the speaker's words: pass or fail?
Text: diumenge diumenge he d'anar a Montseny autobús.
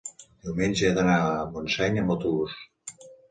fail